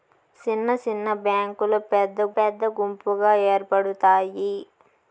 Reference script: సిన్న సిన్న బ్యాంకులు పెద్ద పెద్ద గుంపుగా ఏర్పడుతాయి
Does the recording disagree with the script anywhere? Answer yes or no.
no